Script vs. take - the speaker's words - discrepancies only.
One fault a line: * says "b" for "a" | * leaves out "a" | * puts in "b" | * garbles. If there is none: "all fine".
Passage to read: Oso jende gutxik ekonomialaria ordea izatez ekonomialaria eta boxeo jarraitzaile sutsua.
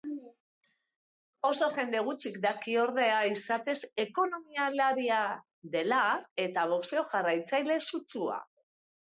* says "daki" for "ekonomialaria"
* puts in "dela"